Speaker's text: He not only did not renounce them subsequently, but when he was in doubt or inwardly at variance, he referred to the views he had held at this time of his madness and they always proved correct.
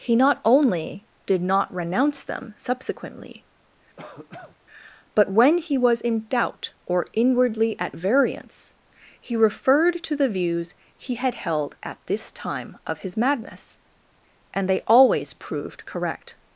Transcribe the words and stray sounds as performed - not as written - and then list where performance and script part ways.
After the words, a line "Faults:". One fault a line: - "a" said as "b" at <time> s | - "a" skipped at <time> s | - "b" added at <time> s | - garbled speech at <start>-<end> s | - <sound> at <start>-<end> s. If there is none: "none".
He not only did not renounce them subsequently, but when he was in doubt or inwardly at variance, he referred to the views he had held at this time of his madness and they always proved correct.
Faults:
- cough at 4.0-4.6 s